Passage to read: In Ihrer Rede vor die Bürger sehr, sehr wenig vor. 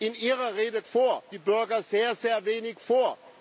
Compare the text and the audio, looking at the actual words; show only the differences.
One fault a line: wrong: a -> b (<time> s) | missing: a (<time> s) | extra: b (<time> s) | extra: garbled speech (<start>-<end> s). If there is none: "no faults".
no faults